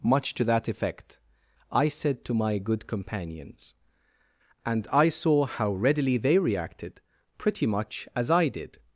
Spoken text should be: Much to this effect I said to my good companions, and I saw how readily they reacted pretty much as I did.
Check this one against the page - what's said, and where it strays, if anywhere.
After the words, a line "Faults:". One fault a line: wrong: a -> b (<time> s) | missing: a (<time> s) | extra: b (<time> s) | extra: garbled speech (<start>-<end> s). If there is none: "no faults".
Much to that effect I said to my good companions, and I saw how readily they reacted pretty much as I did.
Faults:
wrong: this -> that (0.4 s)